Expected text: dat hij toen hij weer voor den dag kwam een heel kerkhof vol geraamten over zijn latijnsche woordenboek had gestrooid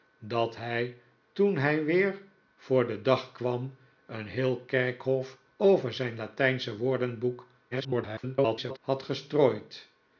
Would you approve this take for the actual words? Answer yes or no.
no